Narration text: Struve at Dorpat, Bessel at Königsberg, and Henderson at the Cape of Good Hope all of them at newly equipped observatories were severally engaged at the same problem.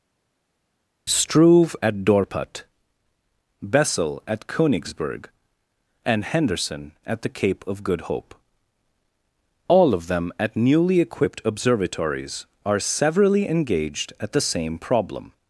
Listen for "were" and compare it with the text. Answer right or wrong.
wrong